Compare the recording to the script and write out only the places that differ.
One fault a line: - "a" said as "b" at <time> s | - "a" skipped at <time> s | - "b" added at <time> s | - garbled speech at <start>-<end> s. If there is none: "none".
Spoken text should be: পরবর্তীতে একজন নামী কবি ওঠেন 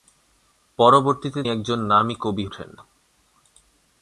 none